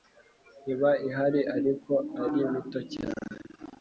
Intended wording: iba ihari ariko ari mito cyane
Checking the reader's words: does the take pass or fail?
pass